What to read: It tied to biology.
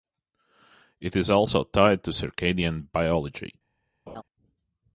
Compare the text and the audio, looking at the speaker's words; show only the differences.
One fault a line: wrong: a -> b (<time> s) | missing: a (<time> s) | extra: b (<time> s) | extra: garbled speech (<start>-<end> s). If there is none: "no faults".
extra: is also (1.1 s)
extra: circadian (2.1 s)